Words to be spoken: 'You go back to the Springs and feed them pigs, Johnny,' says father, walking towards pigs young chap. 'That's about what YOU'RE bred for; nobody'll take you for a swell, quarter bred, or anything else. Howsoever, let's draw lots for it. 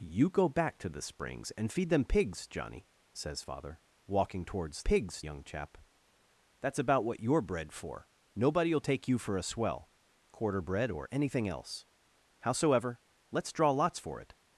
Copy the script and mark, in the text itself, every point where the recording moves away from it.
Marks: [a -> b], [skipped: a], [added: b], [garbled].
'You go back to the Springs and feed them pigs, Johnny,' says father, walking towards pigs young chap. 'That's about what YOU'RE bred for; nobody'll take you for a swell, quarter bred, or anything else. Howsoever, let's draw lots for it.